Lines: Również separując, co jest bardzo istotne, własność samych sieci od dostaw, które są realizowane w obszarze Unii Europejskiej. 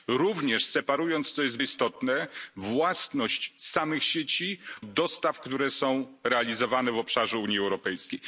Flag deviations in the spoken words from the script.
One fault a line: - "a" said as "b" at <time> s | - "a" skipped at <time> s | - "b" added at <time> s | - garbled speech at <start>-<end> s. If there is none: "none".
- "bardzo" skipped at 1.6 s
- "od" skipped at 4.6 s